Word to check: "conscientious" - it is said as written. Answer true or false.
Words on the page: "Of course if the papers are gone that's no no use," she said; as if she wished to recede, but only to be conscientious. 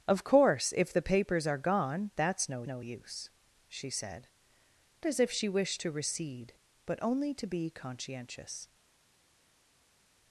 true